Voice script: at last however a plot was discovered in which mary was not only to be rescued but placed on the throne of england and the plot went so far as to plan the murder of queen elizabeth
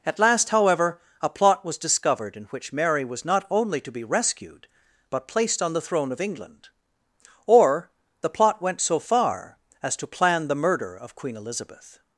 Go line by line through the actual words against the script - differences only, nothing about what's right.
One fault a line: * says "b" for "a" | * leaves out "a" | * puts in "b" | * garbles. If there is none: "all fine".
* says "or" for "and"